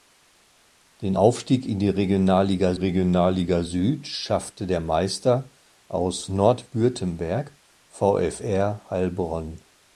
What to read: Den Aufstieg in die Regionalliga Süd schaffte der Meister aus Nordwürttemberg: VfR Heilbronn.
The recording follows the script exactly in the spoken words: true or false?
false